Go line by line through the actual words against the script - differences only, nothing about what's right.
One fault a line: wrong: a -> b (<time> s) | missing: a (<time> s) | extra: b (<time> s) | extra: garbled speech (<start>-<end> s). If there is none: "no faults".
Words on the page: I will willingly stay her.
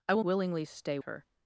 no faults